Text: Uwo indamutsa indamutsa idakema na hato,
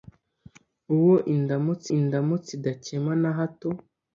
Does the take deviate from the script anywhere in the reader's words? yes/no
no